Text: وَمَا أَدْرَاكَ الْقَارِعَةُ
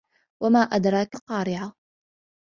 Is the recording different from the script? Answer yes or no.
no